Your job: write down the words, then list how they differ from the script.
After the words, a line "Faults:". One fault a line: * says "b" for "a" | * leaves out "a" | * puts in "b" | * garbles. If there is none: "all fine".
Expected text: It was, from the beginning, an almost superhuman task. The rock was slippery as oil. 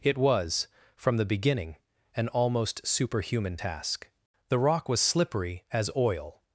It was, from the beginning, an almost superhuman task. The rock was slippery as oil.
Faults:
all fine